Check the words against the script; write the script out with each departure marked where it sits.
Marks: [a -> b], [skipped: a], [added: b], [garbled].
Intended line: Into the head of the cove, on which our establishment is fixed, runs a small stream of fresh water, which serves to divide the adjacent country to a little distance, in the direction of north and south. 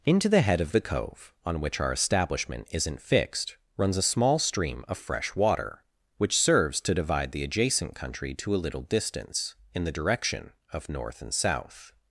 Into the head of the cove, on which our establishment [is -> isn't] fixed, runs a small stream of fresh water, which serves to divide the adjacent country to a little distance, in the direction of north and south.